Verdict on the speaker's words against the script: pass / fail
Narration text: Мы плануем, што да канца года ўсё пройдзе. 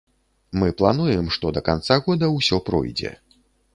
pass